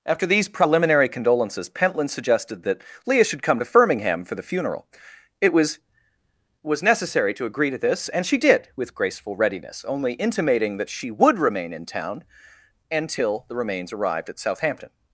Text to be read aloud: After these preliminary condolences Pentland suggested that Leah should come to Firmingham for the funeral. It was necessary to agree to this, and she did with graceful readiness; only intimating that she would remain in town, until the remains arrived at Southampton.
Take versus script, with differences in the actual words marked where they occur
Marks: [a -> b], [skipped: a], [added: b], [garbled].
After these preliminary condolences Pentland suggested that Leah should come to Firmingham for the funeral. It was [added: was] necessary to agree to this, and she did with graceful readiness; only intimating that she would remain in town, until the remains arrived at Southampton.